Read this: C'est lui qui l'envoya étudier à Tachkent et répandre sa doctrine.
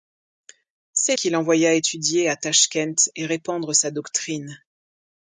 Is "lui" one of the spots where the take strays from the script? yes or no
yes